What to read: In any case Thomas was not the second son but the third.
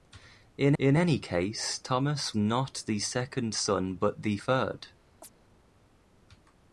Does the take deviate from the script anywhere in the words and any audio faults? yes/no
yes